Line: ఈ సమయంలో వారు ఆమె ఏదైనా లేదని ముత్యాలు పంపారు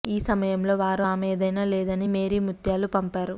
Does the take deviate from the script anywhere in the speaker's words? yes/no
yes